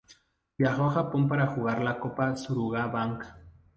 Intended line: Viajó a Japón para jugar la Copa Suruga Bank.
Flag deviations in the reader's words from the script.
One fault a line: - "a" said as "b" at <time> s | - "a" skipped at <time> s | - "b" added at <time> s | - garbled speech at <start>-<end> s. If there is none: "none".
none